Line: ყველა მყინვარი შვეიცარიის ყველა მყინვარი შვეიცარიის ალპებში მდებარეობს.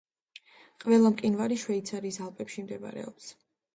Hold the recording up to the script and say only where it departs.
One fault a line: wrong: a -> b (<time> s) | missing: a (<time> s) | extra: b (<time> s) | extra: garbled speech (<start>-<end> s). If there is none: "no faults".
missing: ყველა მყინვარი შვეიცარიის (2.2 s)